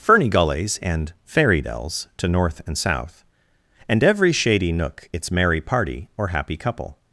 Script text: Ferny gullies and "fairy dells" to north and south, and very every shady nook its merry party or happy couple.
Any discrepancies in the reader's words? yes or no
yes